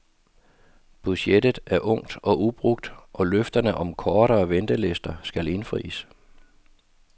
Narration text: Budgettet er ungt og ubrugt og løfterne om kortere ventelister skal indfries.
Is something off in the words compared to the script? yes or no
no